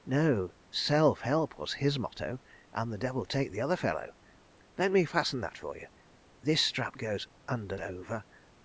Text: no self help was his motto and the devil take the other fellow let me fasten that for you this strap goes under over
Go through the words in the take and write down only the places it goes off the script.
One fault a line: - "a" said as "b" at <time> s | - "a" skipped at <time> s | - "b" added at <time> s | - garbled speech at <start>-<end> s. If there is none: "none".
none